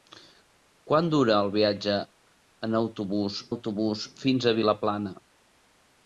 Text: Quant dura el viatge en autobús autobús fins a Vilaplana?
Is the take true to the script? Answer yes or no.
yes